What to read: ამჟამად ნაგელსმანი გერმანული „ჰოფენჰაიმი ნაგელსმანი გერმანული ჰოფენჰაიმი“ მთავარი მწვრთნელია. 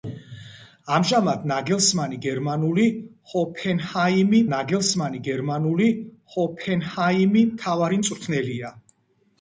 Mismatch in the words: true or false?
false